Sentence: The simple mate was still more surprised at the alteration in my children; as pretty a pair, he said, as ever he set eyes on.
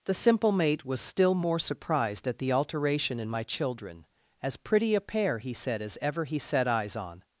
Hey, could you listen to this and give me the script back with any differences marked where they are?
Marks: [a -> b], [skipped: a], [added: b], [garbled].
The simple mate was still more surprised at the alteration in my children; as pretty a pair, he said, as ever he set eyes on.